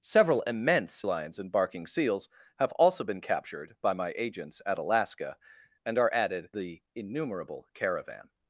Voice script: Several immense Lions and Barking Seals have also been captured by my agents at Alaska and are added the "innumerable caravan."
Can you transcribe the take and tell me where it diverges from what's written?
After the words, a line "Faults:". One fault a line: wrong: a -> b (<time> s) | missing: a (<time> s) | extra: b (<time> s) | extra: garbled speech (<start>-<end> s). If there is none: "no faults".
Several immense Lions and Barking Seals have also been captured by my agents at Alaska and are added the "innumerable caravan."
Faults:
no faults